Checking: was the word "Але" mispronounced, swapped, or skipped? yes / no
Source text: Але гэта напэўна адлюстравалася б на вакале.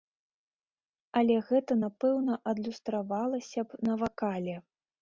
no